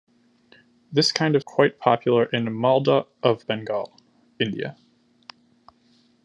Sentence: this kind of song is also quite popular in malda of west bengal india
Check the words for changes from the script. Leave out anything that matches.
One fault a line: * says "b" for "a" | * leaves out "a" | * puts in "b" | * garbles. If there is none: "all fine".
* leaves out "song is also"
* leaves out "west"